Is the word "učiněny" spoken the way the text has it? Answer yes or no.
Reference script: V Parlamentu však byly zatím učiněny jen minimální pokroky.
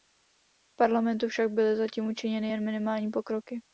yes